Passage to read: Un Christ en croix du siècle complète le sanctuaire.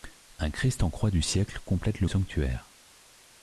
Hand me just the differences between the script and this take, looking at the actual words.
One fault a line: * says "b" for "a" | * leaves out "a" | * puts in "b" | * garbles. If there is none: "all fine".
all fine